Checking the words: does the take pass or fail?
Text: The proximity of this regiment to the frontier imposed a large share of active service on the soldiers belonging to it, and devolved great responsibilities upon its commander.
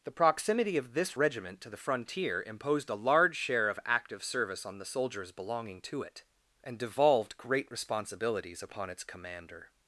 pass